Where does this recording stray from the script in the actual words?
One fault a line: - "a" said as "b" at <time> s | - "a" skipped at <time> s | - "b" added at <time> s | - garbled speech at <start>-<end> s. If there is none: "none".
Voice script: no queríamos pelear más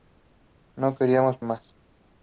- "pelear" skipped at 1.4 s